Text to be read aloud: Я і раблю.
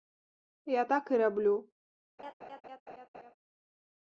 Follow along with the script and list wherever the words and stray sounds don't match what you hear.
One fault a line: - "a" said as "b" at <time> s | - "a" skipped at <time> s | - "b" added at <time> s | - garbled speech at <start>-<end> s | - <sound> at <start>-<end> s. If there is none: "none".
- "так" added at 0.8 s
- laugh at 2.2-3.3 s